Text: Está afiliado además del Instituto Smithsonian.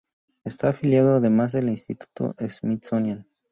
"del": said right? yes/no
no